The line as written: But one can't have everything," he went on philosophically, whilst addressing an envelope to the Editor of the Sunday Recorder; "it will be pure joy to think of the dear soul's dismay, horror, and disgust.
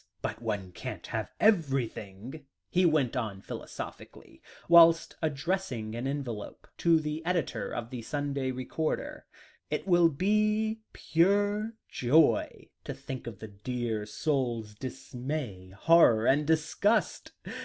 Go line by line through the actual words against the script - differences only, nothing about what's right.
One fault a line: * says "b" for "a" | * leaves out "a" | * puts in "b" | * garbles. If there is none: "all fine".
all fine